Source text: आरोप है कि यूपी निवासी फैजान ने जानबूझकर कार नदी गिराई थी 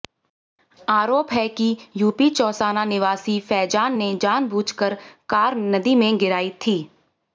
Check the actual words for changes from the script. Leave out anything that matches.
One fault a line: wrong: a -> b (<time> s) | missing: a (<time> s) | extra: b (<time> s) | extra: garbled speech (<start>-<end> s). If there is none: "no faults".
extra: चौसाना (2.3 s)
extra: में (6.0 s)